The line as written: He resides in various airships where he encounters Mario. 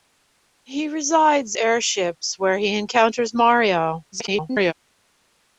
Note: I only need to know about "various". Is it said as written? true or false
false